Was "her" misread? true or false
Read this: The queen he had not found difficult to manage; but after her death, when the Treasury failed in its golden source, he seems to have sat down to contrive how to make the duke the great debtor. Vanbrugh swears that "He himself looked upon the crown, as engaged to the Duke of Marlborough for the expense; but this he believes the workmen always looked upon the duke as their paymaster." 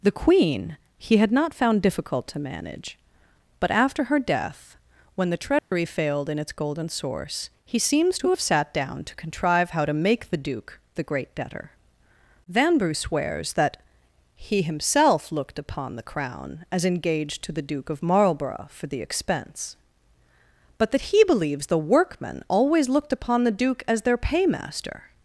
false